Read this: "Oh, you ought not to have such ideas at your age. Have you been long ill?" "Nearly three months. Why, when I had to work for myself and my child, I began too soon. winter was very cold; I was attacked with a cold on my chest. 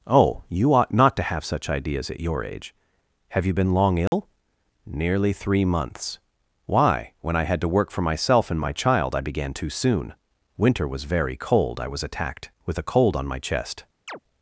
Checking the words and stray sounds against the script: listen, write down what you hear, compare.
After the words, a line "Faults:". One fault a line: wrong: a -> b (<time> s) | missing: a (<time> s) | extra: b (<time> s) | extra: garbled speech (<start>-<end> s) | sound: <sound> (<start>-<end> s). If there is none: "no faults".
"Oh, you ought not to have such ideas at your age. Have you been long ill?" "Nearly three months. Why, when I had to work for myself and my child, I began too soon. winter was very cold; I was attacked with a cold on my chest.
Faults:
sound: dropout (4.1-4.1 s)
sound: chirp (14.1-14.2 s)